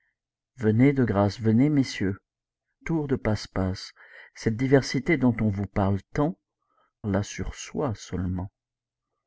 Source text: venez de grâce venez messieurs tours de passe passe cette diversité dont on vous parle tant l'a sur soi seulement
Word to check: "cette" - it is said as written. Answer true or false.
true